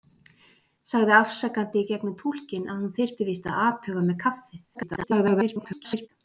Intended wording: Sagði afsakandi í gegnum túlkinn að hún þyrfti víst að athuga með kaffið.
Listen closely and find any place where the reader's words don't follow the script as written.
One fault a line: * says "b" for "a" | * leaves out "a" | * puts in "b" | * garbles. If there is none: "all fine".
* garbles